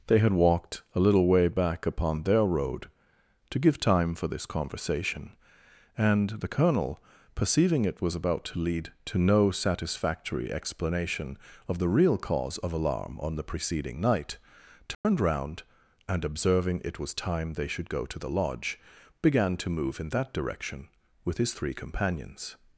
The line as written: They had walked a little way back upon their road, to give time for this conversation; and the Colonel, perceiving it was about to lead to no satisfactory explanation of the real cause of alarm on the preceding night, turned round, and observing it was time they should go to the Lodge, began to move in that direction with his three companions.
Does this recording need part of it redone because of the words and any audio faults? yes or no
yes